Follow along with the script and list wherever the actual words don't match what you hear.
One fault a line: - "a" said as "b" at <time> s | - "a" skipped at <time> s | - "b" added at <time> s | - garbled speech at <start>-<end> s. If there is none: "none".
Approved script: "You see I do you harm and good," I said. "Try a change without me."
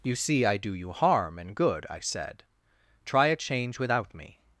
none